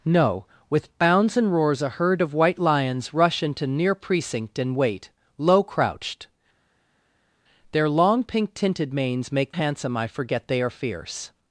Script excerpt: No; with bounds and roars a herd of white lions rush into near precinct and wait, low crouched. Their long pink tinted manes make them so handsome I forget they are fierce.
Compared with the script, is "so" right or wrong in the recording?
wrong